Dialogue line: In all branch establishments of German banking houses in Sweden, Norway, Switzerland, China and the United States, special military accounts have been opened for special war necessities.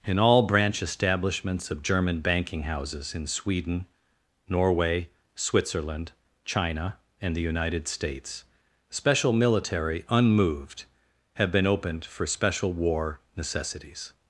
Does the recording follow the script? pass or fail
fail